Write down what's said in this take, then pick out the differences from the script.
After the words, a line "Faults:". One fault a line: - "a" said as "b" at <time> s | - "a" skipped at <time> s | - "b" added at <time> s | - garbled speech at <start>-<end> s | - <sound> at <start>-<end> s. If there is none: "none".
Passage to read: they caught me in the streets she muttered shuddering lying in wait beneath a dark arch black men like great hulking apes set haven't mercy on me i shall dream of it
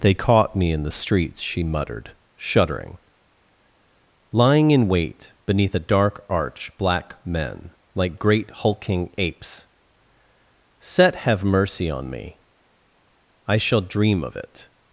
they caught me in the streets she muttered shuddering lying in wait beneath a dark arch black men like great hulking apes set have mercy on me i shall dream of it
Faults:
- "haven't" said as "have" at 11.2 s